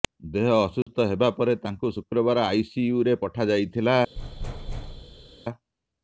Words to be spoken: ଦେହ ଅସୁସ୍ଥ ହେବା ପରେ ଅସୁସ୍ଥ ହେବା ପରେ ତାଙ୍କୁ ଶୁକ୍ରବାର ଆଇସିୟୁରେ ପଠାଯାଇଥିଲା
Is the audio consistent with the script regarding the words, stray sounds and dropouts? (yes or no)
no